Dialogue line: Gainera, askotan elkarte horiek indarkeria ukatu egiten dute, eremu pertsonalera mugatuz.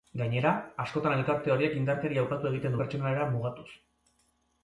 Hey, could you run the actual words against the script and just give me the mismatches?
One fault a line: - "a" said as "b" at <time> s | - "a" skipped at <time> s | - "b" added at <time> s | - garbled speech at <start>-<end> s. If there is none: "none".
- "dute eremu" skipped at 2.8 s